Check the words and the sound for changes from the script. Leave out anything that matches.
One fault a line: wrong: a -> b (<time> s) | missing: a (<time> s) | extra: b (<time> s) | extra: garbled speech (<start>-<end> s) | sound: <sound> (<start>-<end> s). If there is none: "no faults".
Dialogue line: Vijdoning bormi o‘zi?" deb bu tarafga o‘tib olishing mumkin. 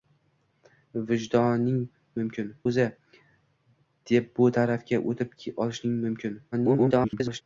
wrong: bormi -> mumkin (2.2 s)
extra: garbled speech (6.5-7.4 s)